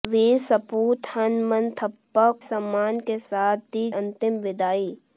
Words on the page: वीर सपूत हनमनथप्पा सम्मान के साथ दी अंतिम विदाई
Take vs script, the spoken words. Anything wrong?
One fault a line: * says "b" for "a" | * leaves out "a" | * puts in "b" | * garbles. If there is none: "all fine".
all fine